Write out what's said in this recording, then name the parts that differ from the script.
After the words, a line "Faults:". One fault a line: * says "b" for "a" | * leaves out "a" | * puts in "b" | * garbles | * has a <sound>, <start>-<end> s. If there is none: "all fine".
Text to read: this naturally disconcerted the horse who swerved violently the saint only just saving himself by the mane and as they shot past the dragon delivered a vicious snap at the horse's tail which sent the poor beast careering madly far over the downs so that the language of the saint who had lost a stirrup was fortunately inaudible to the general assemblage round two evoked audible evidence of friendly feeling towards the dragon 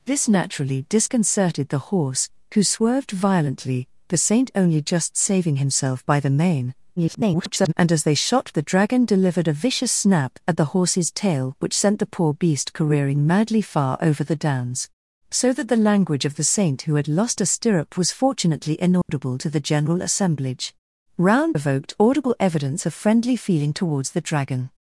this naturally disconcerted the horse who swerved violently the saint only just saving himself by the mane [garbled] and as they shot the dragon delivered a vicious snap at the horse's tail which sent the poor beast careering madly far over the downs so that the language of the saint who had lost a stirrup was fortunately inaudible to the general assemblage round evoked audible evidence of friendly feeling towards the dragon
Faults:
* garbles
* leaves out "past"
* has a dropout, 19.0-19.1 s
* leaves out "two"